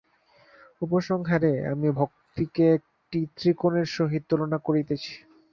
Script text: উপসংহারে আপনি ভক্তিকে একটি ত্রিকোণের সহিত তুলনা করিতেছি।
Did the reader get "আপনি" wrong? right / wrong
wrong